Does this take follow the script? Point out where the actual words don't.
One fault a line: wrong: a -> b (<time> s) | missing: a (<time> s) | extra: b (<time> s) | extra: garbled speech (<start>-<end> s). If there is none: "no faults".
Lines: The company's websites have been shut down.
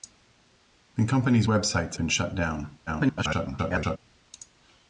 missing: have (2.0 s)
extra: garbled speech (2.9-4.0 s)